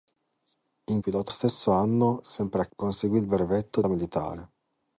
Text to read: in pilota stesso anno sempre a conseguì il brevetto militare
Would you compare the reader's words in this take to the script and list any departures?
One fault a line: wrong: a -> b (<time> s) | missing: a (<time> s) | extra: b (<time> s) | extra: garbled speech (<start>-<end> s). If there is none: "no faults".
no faults